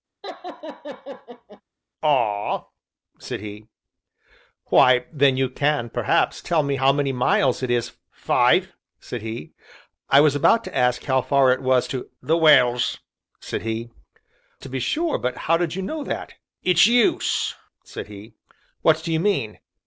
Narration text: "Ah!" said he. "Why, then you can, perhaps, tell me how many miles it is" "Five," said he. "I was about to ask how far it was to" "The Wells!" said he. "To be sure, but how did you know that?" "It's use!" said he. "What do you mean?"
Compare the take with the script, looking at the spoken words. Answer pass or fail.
pass